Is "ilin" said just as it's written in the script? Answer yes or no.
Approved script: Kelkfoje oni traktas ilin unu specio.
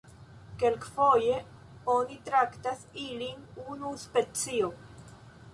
yes